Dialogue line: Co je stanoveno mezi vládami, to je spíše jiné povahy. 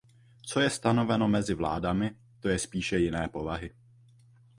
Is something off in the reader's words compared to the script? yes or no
no